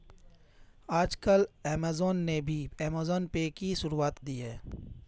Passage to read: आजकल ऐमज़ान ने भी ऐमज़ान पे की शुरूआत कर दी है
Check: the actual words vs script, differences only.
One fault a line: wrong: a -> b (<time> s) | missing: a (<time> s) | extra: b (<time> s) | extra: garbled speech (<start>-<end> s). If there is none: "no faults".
missing: कर (4.2 s)